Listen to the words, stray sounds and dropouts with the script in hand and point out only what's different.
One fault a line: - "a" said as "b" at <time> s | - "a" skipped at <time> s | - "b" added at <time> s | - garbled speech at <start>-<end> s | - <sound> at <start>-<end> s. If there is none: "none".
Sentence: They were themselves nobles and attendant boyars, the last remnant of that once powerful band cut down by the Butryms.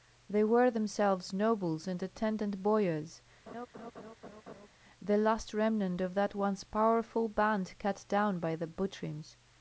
- laugh at 3.5-4.7 s